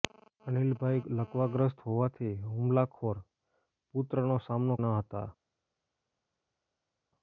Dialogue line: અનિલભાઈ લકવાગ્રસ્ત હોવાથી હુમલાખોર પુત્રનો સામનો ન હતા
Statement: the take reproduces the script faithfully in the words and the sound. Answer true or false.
true